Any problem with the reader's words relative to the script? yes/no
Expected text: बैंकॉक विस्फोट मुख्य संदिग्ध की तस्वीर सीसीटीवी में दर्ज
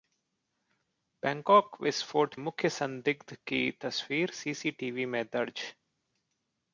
no